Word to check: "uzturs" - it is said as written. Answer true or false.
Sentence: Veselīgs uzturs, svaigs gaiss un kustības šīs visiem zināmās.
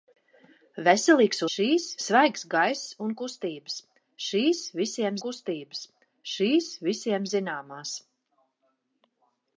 false